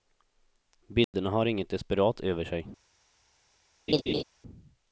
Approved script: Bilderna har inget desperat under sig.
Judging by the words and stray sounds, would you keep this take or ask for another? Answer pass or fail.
fail